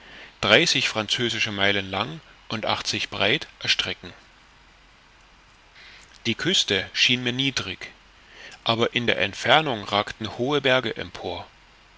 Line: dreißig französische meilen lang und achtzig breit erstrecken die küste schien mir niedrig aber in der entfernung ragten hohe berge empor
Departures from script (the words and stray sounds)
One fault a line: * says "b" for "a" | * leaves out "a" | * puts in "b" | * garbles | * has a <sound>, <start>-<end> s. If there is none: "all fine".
all fine